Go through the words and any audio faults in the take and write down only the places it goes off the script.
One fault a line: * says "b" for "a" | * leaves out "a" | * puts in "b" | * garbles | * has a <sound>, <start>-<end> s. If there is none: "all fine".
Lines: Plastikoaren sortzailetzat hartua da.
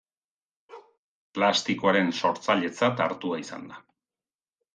* has a bark, 0.7-1.0 s
* puts in "izan"